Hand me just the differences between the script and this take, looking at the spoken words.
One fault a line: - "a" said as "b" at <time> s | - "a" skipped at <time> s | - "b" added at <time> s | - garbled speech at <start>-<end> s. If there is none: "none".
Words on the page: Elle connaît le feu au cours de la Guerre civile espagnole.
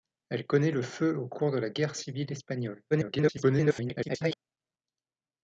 - garbled speech at 2.9-4.4 s